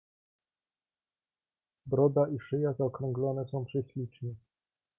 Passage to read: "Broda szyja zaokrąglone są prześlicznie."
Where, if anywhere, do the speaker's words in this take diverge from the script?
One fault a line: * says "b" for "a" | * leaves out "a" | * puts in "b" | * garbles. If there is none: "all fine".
* puts in "i"